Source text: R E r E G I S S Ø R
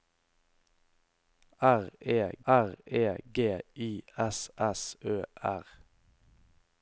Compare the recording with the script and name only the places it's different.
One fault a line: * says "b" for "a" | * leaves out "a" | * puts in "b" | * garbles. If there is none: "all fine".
all fine